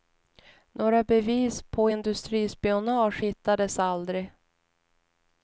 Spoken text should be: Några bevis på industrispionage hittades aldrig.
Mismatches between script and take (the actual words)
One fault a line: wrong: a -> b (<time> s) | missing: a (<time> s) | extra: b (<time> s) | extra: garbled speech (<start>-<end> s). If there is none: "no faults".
no faults